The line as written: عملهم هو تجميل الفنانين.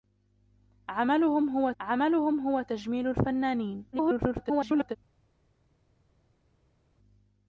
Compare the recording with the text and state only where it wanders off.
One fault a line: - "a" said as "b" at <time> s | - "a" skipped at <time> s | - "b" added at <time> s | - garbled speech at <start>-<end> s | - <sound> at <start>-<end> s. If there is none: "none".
- "عملهم هو" added at 1.8 s
- garbled speech at 3.9-5.0 s